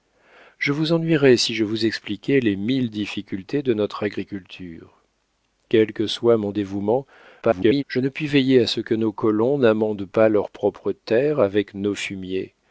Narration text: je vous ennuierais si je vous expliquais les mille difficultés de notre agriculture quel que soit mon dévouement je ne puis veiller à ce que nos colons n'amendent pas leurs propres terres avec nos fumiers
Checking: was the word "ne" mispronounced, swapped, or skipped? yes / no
no